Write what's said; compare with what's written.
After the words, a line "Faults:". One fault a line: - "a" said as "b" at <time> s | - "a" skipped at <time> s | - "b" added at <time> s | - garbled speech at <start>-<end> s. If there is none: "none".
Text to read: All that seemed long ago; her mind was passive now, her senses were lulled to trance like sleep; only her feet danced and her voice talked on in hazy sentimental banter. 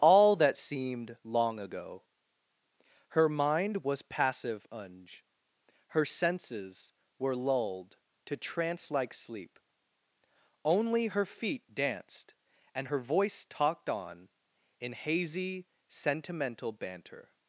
All that seemed long ago; her mind was passive unj, her senses were lulled to trance like sleep; only her feet danced and her voice talked on in hazy sentimental banter.
Faults:
- "now" said as "unj" at 4.7 s